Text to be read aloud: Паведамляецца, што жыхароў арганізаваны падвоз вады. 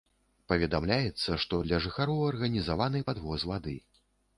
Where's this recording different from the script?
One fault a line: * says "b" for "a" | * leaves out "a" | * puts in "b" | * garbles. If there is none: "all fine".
* puts in "для"